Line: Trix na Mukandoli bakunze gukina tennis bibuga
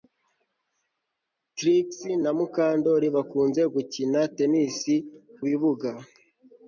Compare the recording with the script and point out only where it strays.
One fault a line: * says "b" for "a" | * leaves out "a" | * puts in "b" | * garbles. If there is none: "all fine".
all fine